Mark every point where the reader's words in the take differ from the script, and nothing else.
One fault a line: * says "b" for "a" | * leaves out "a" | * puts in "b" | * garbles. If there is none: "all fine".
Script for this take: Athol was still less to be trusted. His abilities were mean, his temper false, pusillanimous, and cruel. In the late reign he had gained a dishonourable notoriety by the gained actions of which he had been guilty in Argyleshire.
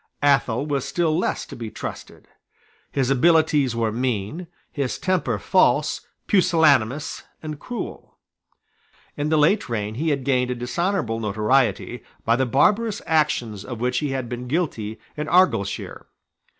* says "barbarous" for "gained"